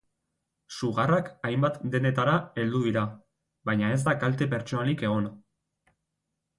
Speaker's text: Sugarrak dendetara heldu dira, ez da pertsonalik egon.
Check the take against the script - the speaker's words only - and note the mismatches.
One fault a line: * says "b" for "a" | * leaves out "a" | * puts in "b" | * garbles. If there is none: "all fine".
* puts in "hainbat"
* puts in "baina"
* puts in "kalte"